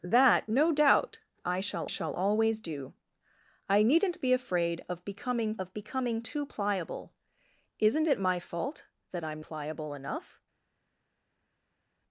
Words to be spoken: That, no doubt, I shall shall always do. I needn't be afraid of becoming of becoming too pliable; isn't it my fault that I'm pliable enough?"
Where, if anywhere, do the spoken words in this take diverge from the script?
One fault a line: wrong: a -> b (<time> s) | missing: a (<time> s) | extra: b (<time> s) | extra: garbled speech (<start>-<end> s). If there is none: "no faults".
no faults